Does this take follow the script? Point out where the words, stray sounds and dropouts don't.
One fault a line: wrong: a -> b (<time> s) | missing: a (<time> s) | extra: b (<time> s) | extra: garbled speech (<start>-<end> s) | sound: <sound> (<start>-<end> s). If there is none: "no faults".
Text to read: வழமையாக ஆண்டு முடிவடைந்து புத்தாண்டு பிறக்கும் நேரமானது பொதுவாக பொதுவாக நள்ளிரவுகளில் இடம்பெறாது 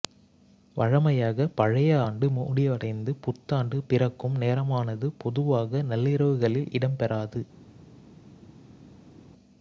extra: பழைய (1.5 s)
missing: பொதுவாக (5.8 s)